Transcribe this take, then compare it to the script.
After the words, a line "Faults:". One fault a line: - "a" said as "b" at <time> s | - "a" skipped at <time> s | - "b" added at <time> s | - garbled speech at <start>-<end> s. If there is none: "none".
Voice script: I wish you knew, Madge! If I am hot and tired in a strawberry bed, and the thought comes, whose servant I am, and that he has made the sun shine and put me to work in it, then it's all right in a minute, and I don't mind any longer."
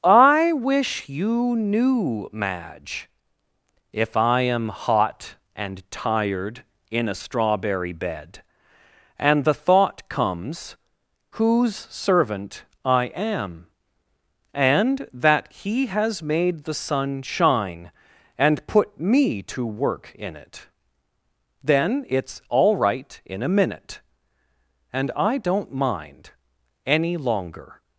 I wish you knew, Madge! If I am hot and tired in a strawberry bed, and the thought comes, whose servant I am, and that he has made the sun shine and put me to work in it, then it's all right in a minute, and I don't mind any longer."
Faults:
none